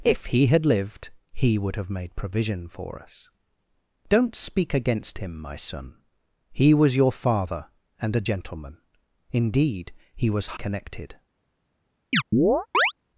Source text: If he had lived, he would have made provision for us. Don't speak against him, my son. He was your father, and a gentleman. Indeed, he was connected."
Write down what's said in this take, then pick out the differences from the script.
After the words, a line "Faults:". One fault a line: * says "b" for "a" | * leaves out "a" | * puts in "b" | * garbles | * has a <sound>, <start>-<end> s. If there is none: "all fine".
If he had lived, he would have made provision for us. Don't speak against him, my son. He was your father, and a gentleman. Indeed, he was connected."
Faults:
* has a chirp, 12.1-12.9 s